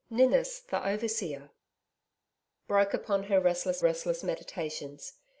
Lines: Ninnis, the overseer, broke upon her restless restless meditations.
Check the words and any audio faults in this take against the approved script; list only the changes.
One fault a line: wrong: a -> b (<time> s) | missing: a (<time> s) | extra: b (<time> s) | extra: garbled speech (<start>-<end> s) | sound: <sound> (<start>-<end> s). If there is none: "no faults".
no faults